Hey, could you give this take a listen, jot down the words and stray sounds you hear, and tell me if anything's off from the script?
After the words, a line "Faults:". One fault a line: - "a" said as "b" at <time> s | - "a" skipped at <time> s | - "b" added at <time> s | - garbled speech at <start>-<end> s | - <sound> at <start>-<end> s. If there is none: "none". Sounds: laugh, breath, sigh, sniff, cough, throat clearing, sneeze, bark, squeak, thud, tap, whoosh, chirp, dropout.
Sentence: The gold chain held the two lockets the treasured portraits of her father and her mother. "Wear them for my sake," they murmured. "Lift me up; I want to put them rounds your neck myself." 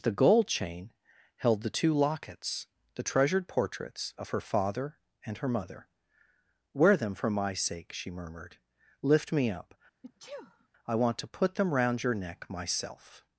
The gold chain held the two lockets the treasured portraits of her father and her mother. "Wear them for my sake," she murmured. "Lift me up; I want to put them round your neck myself."
Faults:
- "they" said as "she" at 7.9 s
- sneeze at 10.0-10.7 s
- "rounds" said as "round" at 11.7 s